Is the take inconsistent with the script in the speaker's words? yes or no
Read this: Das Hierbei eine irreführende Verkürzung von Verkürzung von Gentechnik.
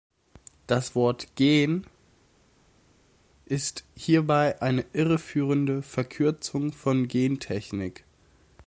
yes